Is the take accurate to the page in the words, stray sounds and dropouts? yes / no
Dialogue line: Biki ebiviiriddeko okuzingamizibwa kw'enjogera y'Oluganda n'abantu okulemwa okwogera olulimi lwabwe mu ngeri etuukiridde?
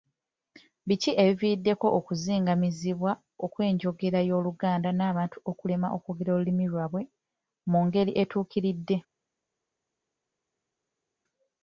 yes